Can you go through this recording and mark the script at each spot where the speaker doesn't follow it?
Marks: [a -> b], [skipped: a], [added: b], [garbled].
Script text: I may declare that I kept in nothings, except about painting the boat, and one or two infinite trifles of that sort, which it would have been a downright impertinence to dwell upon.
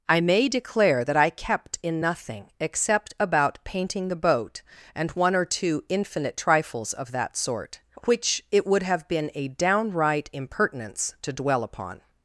I may declare that I kept in [nothings, -> nothing] except about painting the boat, and one or two infinite trifles of that sort, which it would have been a downright impertinence to dwell upon.